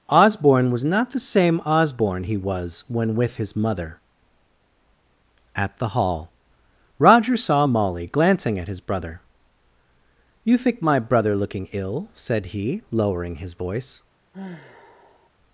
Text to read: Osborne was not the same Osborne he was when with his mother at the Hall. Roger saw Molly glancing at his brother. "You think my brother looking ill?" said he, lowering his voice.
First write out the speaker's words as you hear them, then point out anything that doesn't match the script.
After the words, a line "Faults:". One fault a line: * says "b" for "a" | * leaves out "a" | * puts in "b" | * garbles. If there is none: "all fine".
Osborne was not the same Osborne he was when with his mother at the Hall. Roger saw Molly glancing at his brother. "You think my brother looking ill?" said he, lowering his voice.
Faults:
all fine